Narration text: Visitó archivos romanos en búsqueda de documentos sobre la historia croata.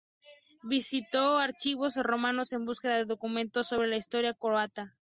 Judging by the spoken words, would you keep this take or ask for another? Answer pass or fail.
pass